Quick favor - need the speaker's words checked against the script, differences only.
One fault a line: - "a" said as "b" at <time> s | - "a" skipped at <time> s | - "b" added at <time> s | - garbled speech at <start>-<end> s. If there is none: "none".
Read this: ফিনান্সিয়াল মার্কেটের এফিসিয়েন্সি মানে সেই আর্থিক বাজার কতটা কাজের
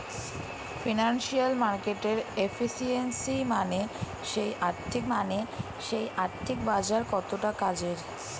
- "মানে সেই আর্থিক" added at 5.1 s